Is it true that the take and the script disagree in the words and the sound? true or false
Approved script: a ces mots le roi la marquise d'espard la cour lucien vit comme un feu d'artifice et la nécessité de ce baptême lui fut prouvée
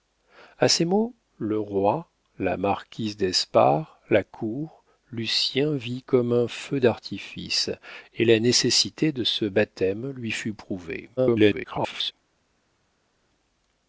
true